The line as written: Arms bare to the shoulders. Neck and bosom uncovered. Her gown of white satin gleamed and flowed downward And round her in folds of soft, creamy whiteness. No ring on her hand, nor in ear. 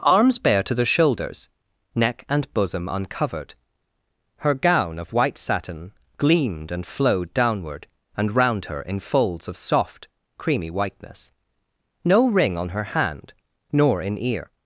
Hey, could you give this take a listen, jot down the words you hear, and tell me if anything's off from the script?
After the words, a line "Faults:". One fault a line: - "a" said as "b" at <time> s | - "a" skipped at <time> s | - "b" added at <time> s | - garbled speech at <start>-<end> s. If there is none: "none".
Arms bare to the shoulders. Neck and bosom uncovered. Her gown of white satin gleamed and flowed downward And round her in folds of soft, creamy whiteness. No ring on her hand, nor in ear.
Faults:
none